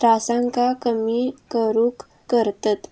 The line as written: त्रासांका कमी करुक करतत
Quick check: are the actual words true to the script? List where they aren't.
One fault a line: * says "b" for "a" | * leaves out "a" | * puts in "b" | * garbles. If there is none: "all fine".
all fine